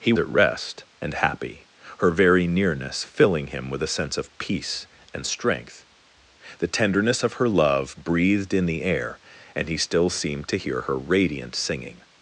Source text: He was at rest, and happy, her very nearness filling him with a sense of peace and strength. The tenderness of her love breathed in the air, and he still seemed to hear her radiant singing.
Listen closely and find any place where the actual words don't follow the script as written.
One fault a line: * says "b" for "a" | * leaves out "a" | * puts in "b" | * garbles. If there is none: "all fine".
* leaves out "was"